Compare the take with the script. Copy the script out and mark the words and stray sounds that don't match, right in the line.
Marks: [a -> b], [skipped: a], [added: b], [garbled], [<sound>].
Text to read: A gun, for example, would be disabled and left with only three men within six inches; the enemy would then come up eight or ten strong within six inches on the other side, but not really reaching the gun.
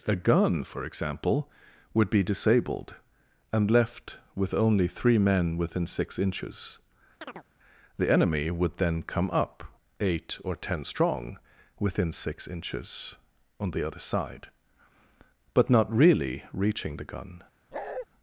A gun, for example, would be disabled and left with only three men within six inches; [chirp] the enemy would then come up eight or ten strong within six inches on the other side, but not really reaching the gun. [bark]